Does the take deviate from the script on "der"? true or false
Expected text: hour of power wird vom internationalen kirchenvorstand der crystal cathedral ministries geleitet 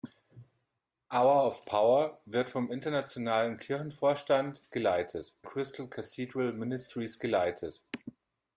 true